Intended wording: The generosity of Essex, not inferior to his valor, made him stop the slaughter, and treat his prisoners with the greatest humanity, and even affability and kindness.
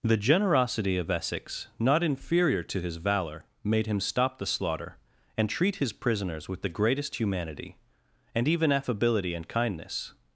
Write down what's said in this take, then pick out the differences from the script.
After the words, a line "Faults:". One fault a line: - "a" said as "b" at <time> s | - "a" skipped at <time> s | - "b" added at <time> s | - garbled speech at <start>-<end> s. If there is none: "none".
The generosity of Essex, not inferior to his valor, made him stop the slaughter, and treat his prisoners with the greatest humanity, and even affability and kindness.
Faults:
none